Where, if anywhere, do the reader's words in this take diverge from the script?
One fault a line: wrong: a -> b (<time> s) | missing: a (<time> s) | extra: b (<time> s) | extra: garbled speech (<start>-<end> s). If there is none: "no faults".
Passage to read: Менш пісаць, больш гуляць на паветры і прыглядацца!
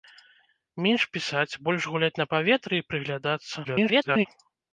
extra: garbled speech (3.6-4.3 s)